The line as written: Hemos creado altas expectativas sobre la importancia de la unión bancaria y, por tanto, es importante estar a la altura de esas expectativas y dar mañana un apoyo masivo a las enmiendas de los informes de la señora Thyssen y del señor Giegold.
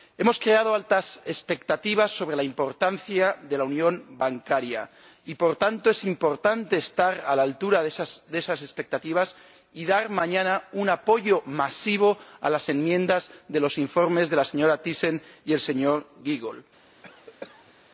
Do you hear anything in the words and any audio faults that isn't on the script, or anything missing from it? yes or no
yes